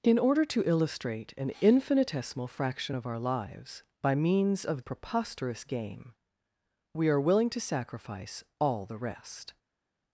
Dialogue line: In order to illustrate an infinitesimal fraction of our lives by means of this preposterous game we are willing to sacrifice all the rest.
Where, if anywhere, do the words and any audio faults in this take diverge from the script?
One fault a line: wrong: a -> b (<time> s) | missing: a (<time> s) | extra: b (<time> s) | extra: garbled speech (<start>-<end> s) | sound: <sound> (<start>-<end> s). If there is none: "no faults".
missing: this (4.8 s)